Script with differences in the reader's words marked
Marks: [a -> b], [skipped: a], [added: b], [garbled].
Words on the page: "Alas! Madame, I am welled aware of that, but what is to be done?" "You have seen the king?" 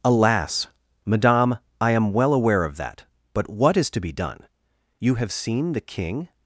"Alas! Madame, I am [welled -> well] aware of that, but what is to be done?" "You have seen the king?"